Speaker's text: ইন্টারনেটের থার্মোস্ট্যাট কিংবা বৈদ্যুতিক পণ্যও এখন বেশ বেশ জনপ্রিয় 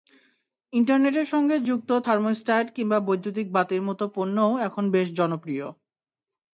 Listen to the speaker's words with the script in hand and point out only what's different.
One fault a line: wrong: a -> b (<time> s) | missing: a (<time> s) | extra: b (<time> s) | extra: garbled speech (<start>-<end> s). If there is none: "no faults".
extra: সঙ্গে যুক্ত (1.3 s)
extra: বাতির মতো (3.5 s)
missing: বেশ (5.1 s)